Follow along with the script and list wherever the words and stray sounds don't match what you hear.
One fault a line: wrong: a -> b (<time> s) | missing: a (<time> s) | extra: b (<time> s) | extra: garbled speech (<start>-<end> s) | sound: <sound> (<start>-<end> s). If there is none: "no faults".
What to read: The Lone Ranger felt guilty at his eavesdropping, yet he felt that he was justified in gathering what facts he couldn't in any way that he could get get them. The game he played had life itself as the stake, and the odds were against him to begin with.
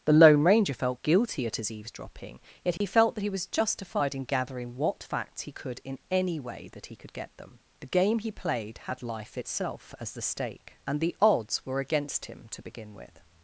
sound: dropout (2.8-2.8 s)
wrong: couldn't -> could (5.5 s)
missing: get (7.3 s)